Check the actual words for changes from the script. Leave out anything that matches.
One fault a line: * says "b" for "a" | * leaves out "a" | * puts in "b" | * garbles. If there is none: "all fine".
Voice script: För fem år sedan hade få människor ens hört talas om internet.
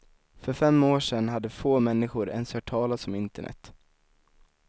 all fine